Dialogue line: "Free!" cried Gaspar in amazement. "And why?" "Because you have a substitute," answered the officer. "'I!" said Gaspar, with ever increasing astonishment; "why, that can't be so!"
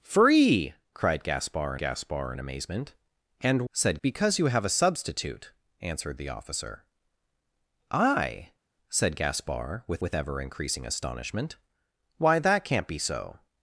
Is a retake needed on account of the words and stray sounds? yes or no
yes